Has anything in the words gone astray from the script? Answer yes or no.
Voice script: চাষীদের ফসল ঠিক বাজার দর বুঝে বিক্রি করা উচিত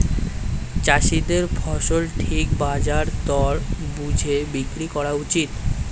no